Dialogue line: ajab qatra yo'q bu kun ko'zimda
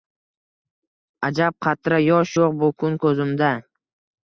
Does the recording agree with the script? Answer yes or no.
no